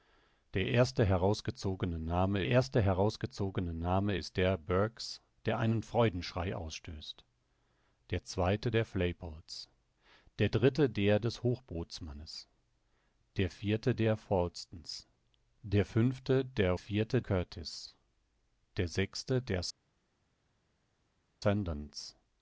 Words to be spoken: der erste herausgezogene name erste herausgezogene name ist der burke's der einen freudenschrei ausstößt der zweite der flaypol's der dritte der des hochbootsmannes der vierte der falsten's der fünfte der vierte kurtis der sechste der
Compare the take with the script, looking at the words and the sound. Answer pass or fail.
pass